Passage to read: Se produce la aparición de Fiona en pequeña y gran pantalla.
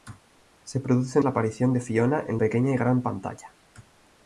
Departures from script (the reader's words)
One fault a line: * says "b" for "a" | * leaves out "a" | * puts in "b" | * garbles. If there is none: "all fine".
all fine